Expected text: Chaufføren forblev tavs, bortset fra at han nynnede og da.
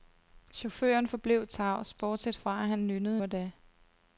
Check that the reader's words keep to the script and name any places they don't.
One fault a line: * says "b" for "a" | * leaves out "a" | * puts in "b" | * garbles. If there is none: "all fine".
all fine